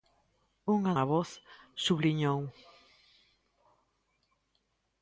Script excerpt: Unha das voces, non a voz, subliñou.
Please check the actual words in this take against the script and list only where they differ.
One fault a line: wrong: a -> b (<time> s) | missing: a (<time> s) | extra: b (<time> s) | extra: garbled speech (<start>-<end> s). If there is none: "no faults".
missing: das voces non (0.9 s)